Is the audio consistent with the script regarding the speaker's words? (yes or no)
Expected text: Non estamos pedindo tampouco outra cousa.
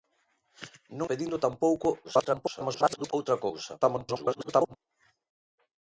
no